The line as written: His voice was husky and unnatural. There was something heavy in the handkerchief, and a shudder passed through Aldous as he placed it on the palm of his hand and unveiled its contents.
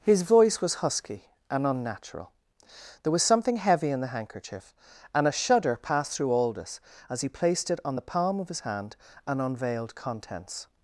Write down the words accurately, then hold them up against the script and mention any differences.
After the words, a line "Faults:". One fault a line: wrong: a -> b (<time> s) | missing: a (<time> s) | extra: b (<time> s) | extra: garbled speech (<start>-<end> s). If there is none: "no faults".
His voice was husky and unnatural. There was something heavy in the handkerchief, and a shudder passed through Aldous as he placed it on the palm of his hand and unveiled contents.
Faults:
missing: its (10.0 s)